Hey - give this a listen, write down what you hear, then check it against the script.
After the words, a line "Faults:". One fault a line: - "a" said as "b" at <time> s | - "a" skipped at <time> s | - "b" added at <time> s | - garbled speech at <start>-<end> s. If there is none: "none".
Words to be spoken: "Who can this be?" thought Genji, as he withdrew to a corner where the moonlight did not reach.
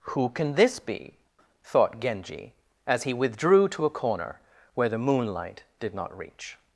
"Who can this be?" thought Genji, as he withdrew to a corner where the moonlight did not reach.
Faults:
none